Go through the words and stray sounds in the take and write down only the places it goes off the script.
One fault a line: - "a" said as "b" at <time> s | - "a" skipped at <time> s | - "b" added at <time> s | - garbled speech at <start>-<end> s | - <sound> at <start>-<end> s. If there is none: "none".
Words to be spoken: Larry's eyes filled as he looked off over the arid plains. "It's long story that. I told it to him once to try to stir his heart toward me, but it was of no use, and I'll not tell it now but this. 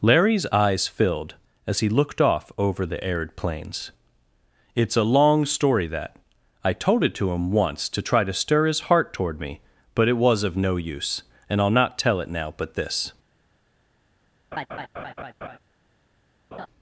- "a" added at 5.0 s
- laugh at 14.5-15.6 s
- laugh at 16.5-16.7 s